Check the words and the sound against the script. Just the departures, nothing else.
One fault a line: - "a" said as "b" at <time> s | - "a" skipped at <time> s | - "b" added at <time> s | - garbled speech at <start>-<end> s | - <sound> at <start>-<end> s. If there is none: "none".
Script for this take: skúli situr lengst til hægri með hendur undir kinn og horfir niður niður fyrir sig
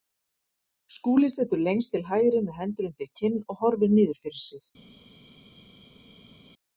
- "niður" skipped at 4.2 s